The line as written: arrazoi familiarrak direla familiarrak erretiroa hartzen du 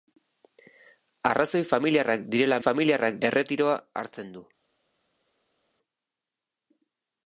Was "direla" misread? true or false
false